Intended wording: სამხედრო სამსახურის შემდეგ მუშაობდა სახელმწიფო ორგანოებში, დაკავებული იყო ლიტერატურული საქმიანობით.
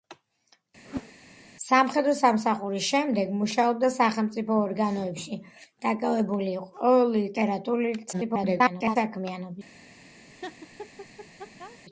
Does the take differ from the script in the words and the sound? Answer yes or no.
yes